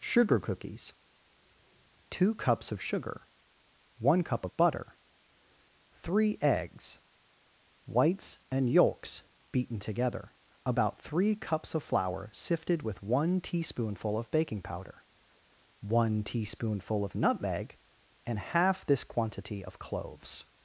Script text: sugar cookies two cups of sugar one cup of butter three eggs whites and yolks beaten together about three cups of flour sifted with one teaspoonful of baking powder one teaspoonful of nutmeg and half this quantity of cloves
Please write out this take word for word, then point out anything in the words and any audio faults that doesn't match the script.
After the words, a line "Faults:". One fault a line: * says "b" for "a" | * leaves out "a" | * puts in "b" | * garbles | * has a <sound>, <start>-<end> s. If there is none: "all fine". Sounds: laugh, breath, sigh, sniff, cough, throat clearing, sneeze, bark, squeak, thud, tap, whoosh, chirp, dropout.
sugar cookies two cups of sugar one cup of butter three eggs whites and yolks beaten together about three cups of flour sifted with one teaspoonful of baking powder one teaspoonful of nutmeg and half this quantity of cloves
Faults:
all fine